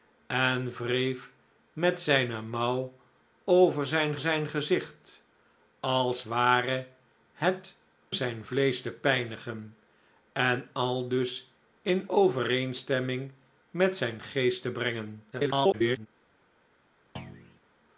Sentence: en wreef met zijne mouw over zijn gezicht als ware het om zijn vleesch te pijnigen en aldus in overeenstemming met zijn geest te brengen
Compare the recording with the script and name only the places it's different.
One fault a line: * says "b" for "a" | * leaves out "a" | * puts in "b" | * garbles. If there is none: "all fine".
* puts in "zijn"
* leaves out "om"
* garbles